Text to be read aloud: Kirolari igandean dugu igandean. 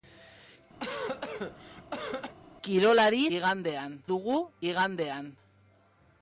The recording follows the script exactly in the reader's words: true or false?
true